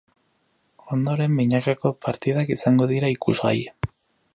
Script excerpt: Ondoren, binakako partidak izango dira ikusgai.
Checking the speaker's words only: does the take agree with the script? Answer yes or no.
yes